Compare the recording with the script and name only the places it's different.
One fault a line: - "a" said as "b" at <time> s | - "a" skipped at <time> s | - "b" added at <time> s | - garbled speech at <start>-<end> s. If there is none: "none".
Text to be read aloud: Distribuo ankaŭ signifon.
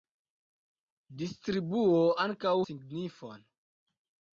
none